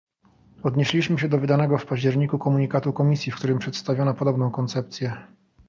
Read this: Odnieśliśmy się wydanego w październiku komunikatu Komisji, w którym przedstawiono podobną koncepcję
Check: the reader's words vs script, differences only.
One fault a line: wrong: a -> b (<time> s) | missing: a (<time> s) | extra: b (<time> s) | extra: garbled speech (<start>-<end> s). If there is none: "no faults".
extra: do (1.3 s)